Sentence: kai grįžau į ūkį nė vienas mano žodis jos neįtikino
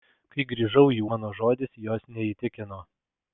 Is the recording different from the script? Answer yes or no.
yes